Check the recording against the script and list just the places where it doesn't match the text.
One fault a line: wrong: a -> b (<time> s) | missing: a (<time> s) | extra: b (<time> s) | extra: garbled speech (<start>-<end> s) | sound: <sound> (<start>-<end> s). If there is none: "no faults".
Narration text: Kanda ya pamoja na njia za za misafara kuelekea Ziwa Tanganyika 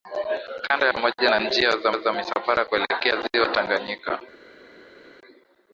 no faults